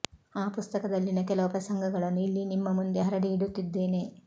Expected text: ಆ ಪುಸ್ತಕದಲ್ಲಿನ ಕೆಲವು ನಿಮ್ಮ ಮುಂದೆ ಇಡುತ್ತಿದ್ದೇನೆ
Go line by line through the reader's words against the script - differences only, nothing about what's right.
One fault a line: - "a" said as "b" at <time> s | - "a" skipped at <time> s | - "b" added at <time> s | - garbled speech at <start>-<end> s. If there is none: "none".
- "ಪ್ರಸಂಗಗಳನ್ನು ಇಲ್ಲಿ" added at 1.5 s
- "ಹರಡಿ" added at 3.0 s